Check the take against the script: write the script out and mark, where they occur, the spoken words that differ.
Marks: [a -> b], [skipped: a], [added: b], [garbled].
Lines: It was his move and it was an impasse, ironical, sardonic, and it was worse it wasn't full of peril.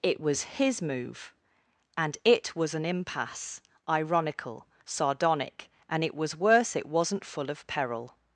It was his move and it was an impasse, ironical, sardonic, and it was worse it wasn't full of peril.